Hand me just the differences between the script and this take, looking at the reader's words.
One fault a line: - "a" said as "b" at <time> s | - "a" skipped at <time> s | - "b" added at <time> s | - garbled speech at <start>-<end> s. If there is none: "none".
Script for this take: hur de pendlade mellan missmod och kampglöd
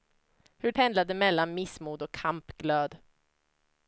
- "de" skipped at 0.7 s